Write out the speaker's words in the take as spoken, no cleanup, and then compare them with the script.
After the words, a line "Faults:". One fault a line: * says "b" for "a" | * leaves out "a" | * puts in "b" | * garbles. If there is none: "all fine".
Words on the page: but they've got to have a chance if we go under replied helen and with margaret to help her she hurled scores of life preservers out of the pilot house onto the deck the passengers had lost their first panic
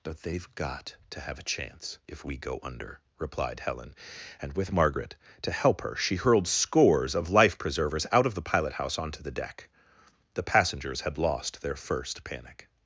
but they've got to have a chance if we go under replied helen and with margaret to help her she hurled scores of life preservers out of the pilot house onto the deck the passengers had lost their first panic
Faults:
all fine